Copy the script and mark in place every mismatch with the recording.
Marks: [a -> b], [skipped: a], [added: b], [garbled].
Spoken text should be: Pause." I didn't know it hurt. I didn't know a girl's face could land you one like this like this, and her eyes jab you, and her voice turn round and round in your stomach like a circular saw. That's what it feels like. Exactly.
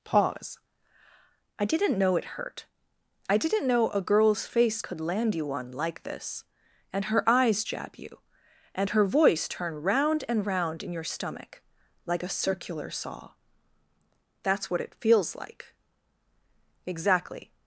Pause." I didn't know it hurt. I didn't know a girl's face could land you one like this [skipped: like this,] and her eyes jab you, and her voice turn round and round in your stomach like a circular saw. That's what it feels like. Exactly.